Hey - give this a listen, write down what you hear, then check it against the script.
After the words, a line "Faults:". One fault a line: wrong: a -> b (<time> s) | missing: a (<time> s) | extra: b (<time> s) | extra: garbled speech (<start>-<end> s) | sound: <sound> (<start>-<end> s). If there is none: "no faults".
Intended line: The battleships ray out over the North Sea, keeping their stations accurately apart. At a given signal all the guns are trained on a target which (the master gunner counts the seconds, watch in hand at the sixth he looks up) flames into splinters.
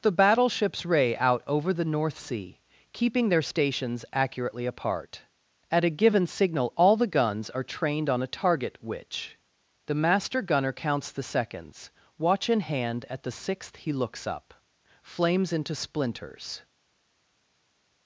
The battleships ray out over the North Sea, keeping their stations accurately apart. At a given signal all the guns are trained on a target which (the master gunner counts the seconds, watch in hand at the sixth he looks up) flames into splinters.
Faults:
no faults